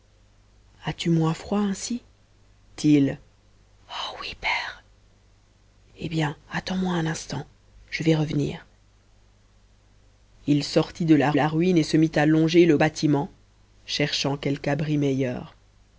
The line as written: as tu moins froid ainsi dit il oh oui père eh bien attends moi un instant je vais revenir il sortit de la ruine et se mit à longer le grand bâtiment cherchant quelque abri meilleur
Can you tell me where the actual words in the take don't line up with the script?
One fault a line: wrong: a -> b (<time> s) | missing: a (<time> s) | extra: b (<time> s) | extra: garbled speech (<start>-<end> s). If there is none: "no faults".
missing: dit (2.0 s)
extra: la (11.3 s)
missing: grand (12.8 s)